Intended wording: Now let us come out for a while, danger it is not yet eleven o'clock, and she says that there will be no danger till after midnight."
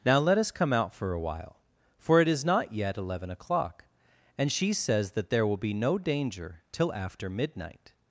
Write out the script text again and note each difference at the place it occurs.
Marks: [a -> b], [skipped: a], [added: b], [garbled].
Now let us come out for a while, [danger -> for] it is not yet eleven o'clock, and she says that there will be no danger till after midnight."